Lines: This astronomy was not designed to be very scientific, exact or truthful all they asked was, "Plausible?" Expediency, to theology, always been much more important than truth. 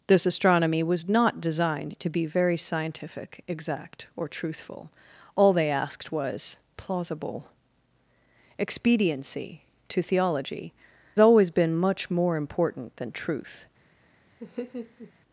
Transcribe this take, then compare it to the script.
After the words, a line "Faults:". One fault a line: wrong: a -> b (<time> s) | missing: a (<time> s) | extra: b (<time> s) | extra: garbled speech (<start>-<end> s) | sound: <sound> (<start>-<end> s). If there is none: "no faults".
This astronomy was not designed to be very scientific, exact or truthful all they asked was, "Plausible?" Expediency, to theology, always been much more important than truth.
Faults:
sound: laugh (14.4-15.1 s)